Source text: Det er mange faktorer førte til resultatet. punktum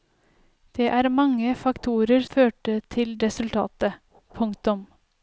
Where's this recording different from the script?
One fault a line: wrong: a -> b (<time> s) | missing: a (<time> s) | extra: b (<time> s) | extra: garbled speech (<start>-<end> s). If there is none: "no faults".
no faults